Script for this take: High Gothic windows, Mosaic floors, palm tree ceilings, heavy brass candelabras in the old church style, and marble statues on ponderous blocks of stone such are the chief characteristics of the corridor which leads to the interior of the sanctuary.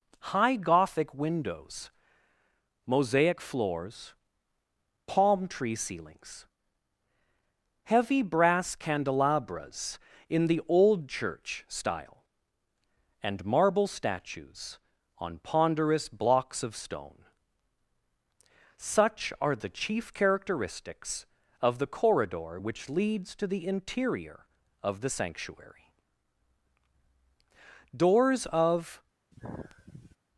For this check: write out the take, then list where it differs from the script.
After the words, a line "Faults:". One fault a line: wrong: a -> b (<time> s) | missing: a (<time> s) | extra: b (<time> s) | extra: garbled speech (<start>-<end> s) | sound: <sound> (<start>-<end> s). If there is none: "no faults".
High Gothic windows, Mosaic floors, palm tree ceilings, heavy brass candelabras in the old church style, and marble statues on ponderous blocks of stone such are the chief characteristics of the corridor which leads to the interior of the sanctuary. Doors of
Faults:
extra: Doors of (27.9 s)
sound: sigh (29.3-30.2 s)